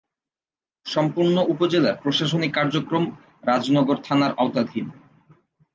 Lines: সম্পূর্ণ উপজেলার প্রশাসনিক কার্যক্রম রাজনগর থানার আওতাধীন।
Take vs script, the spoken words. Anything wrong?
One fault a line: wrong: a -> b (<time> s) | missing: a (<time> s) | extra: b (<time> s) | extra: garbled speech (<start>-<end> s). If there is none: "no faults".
no faults